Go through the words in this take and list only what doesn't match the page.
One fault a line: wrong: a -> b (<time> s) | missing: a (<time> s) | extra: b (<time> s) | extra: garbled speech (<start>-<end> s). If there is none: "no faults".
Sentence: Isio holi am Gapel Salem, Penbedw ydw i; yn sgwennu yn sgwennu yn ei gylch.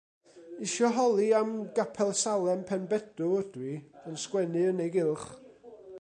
missing: sgwennu yn (4.8 s)